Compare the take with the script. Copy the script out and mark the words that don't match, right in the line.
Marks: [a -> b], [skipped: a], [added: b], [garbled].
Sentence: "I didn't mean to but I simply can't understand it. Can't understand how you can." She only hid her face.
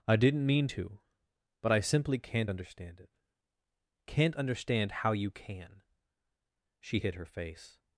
"I didn't mean to but I simply can't understand it. Can't understand how you can." She [skipped: only] hid her face.